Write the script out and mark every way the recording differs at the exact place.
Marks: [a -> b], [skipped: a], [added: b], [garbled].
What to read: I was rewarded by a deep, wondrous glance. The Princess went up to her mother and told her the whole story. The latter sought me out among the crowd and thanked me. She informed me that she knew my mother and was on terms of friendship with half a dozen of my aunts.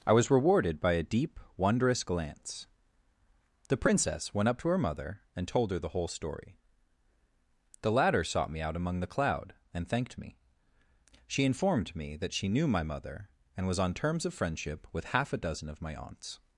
I was rewarded by a deep, wondrous glance. The Princess went up to her mother and told her the whole story. The latter sought me out among the [crowd -> cloud] and thanked me. She informed me that she knew my mother and was on terms of friendship with half a dozen of my aunts.